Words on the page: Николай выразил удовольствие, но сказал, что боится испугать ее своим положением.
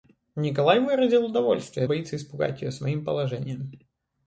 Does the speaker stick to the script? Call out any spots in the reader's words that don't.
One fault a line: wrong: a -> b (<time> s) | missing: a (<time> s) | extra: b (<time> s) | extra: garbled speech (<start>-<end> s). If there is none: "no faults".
missing: но сказал что (1.9 s)